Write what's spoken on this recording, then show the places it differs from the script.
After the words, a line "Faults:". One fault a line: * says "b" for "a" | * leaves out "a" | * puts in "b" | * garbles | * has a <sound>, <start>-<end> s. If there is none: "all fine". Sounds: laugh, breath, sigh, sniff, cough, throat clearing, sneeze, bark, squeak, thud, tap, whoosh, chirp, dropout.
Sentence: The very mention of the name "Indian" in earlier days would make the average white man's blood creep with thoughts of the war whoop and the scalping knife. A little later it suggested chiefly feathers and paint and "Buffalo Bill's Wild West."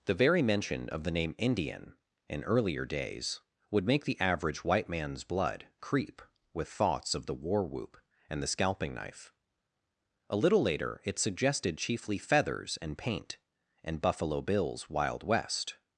The very mention of the name "Indian" in earlier days would make the average white man's blood creep with thoughts of the war whoop and the scalping knife. A little later it suggested chiefly feathers and paint and "Buffalo Bill's Wild West."
Faults:
all fine